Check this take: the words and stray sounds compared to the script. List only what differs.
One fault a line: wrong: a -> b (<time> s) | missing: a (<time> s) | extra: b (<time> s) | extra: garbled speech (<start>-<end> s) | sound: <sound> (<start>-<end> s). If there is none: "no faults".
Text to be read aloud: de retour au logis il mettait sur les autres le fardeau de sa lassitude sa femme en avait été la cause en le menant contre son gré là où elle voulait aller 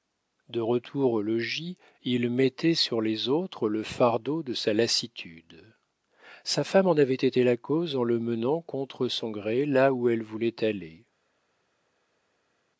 no faults